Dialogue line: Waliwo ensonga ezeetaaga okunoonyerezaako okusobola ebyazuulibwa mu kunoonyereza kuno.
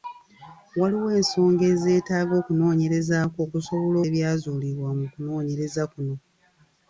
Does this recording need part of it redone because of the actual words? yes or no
no